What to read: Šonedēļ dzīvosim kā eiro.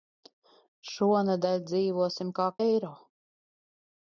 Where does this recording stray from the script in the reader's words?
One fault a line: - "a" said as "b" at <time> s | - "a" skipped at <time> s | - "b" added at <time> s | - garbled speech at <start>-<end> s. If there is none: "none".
none